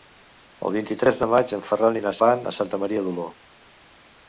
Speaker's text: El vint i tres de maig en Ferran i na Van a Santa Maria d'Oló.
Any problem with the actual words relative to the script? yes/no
no